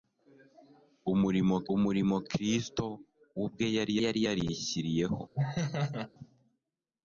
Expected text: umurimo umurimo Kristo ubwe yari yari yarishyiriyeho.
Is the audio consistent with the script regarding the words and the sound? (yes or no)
no